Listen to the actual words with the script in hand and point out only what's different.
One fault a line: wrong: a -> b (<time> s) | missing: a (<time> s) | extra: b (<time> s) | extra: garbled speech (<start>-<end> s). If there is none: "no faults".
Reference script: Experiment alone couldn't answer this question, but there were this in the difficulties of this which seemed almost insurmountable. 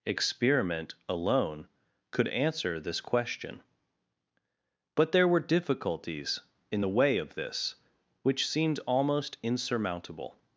wrong: couldn't -> could (2.1 s)
wrong: this -> difficulties (5.4 s)
wrong: difficulties -> way (6.9 s)